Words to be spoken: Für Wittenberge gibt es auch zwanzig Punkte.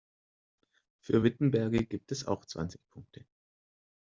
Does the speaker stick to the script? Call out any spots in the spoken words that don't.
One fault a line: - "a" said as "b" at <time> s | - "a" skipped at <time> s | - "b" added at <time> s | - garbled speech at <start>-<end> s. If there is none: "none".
none